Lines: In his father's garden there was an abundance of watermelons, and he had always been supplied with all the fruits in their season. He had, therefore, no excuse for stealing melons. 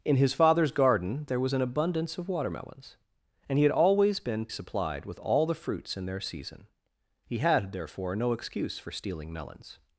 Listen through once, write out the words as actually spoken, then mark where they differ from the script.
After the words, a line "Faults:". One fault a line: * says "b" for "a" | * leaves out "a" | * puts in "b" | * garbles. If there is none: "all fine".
In his father's garden there was an abundance of watermelons, and he had always been supplied with all the fruits in their season. He had, therefore, no excuse for stealing melons.
Faults:
all fine